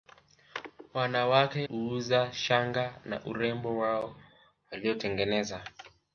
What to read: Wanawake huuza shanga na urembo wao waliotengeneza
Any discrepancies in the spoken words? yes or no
no